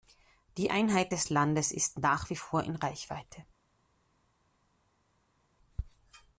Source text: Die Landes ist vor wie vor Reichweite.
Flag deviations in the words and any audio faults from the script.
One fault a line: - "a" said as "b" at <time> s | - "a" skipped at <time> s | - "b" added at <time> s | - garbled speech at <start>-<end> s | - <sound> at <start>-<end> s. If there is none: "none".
- "Einheit des" added at 0.7 s
- "vor" said as "nach" at 2.0 s
- "in" added at 2.6 s